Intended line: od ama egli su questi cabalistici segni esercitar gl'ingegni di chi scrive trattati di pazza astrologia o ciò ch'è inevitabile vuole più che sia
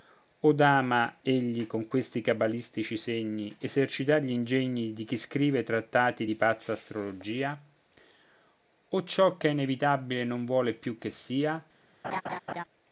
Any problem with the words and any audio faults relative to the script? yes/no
yes